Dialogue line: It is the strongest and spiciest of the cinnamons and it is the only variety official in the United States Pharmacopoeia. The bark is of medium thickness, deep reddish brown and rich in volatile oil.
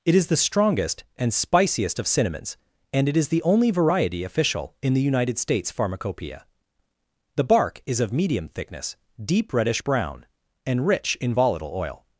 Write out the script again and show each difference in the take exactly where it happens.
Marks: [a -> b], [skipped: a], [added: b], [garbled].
It is the strongest and spiciest of [skipped: the] cinnamons and it is the only variety official in the United States Pharmacopoeia. The bark is of medium thickness, deep reddish brown and rich in volatile oil.